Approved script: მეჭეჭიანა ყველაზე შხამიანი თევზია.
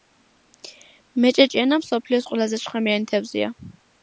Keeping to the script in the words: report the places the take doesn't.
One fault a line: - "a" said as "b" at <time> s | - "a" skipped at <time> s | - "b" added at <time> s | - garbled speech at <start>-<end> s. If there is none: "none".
- "მსოფლიოს" added at 1.8 s